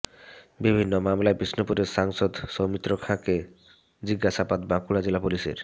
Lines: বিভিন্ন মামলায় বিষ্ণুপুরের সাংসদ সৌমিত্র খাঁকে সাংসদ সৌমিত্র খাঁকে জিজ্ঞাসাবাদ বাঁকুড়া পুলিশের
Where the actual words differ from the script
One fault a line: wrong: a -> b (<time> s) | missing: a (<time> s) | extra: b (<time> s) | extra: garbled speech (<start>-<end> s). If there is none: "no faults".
missing: সাংসদ সৌমিত্র খাঁকে (3.4 s)
extra: জেলা (5.0 s)